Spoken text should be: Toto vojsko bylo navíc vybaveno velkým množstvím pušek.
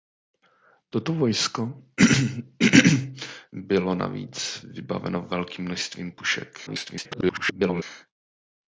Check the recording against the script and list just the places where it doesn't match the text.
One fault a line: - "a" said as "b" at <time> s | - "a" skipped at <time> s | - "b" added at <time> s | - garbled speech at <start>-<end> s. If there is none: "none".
- garbled speech at 6.7-7.8 s